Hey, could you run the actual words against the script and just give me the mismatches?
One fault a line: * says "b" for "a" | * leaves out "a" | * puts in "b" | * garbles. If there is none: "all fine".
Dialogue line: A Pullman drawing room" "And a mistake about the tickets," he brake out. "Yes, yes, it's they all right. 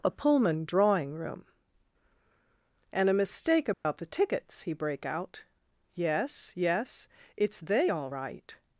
all fine